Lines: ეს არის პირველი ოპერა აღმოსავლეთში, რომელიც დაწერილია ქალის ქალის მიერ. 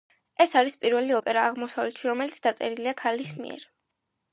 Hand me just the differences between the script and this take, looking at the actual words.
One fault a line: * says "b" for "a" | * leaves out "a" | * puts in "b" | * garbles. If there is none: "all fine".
* leaves out "ქალის"